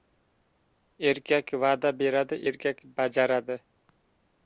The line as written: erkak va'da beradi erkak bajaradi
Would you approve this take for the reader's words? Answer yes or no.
yes